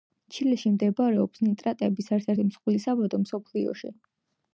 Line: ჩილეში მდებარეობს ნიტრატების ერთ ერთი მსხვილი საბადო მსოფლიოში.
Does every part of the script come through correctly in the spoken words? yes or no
yes